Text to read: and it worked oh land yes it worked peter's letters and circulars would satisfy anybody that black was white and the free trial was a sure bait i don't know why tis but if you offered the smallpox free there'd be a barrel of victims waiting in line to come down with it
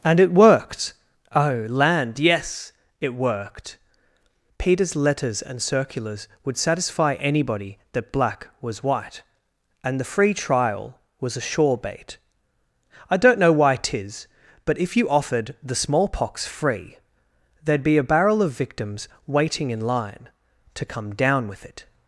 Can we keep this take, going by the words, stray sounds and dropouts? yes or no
yes